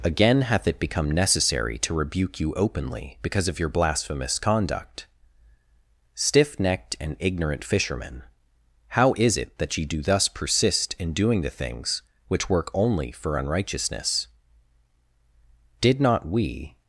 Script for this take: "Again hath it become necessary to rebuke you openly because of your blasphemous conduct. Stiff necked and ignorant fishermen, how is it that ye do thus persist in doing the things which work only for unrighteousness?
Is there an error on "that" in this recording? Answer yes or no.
no